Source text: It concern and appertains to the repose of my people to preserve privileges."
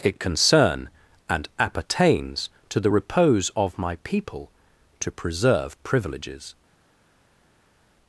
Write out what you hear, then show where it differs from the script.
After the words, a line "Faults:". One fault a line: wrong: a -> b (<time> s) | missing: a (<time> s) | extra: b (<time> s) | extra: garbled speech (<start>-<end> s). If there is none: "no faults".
It concern and appertains to the repose of my people to preserve privileges."
Faults:
no faults